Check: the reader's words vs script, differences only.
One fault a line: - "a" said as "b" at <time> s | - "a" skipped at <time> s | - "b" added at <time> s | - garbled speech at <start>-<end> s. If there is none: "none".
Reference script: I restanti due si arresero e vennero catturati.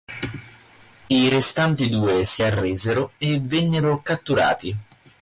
none